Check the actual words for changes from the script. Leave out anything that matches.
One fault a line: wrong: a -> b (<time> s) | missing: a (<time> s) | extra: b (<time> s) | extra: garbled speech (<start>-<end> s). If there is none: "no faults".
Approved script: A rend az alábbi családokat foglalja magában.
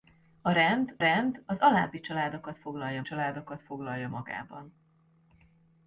extra: rend (1.0 s)
extra: családokat foglalja (3.0 s)